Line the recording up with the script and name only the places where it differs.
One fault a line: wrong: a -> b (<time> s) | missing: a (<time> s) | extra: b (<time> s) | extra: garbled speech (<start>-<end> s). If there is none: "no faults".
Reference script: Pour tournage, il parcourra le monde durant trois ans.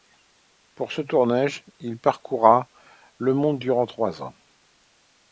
extra: ce (0.9 s)